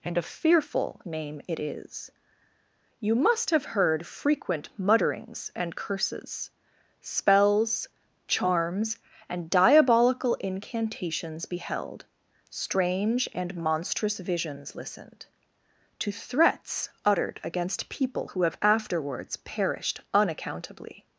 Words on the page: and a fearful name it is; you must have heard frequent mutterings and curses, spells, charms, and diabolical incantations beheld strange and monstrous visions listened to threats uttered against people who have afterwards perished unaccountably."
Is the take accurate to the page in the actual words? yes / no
yes